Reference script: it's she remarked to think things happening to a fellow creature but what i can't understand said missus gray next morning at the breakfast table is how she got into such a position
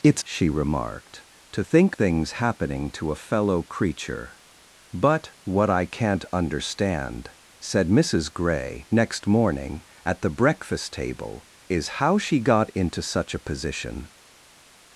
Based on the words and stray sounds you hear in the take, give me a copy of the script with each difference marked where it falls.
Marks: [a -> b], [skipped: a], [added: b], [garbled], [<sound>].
it's she remarked to think things happening to a fellow creature but what i can't understand said missus gray next morning at the breakfast table is how she got into such a position